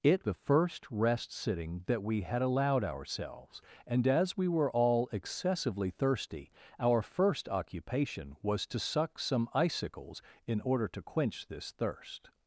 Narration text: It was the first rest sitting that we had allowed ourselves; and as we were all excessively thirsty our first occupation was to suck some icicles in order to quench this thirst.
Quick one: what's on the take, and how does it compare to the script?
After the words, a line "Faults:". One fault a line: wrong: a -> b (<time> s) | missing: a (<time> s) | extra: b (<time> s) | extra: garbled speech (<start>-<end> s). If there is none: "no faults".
It the first rest sitting that we had allowed ourselves; and as we were all excessively thirsty our first occupation was to suck some icicles in order to quench this thirst.
Faults:
missing: was (0.3 s)